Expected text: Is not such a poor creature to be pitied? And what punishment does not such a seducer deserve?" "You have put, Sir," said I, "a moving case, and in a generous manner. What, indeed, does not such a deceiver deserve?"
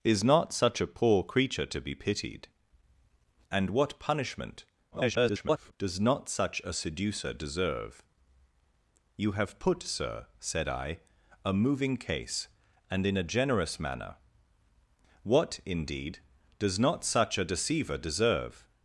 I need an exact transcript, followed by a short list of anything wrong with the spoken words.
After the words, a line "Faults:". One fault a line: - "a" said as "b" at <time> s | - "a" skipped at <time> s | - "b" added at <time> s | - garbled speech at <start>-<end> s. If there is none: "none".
Is not such a poor creature to be pitied? And what punishment [garbled] does not such a seducer deserve?" "You have put, Sir," said I, "a moving case, and in a generous manner. What, indeed, does not such a deceiver deserve?"
Faults:
- garbled speech at 4.9-5.7 s